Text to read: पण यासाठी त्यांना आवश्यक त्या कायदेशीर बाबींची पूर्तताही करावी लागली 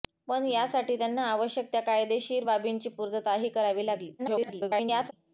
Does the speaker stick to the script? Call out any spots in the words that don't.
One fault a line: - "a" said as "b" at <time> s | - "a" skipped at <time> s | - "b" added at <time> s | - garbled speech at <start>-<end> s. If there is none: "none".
- garbled speech at 4.2-5.1 s